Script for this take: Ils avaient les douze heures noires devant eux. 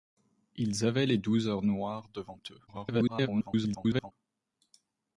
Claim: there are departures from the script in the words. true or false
true